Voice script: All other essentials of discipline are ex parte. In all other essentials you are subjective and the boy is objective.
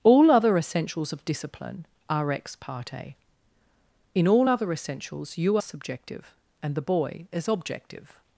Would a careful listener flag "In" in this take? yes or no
no